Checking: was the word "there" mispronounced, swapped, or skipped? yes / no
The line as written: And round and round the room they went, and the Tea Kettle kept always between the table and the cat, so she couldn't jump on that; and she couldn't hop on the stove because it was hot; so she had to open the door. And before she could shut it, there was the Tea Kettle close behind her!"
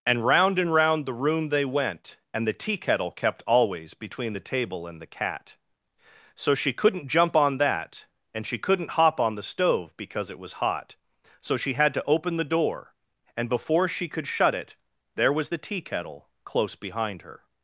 no